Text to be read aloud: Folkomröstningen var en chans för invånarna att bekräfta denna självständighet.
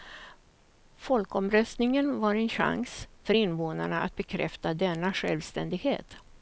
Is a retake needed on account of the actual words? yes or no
no